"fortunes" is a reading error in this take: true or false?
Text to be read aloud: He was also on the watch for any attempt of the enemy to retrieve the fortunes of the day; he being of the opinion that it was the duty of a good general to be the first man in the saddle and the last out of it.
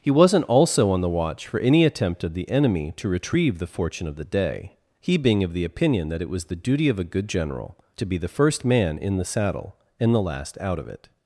true